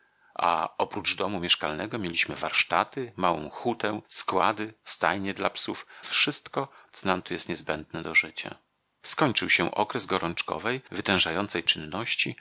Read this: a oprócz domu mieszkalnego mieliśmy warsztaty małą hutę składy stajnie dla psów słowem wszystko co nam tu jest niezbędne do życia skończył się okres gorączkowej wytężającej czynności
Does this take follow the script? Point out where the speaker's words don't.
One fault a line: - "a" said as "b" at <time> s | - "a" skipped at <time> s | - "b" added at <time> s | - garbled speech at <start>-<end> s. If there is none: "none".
- "słowem" skipped at 5.8 s